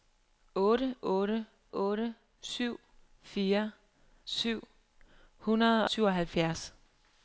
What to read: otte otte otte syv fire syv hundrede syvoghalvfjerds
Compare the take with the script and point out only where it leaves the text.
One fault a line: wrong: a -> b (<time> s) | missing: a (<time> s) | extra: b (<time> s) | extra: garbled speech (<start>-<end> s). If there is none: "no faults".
no faults